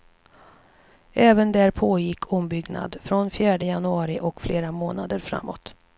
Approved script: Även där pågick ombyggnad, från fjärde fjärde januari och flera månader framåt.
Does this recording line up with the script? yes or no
no